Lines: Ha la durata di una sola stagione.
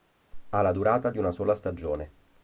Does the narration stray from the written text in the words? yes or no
no